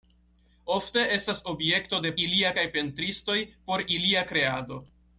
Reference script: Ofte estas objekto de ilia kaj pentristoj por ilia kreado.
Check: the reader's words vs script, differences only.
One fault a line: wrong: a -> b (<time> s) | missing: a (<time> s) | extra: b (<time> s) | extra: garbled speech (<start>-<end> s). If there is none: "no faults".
no faults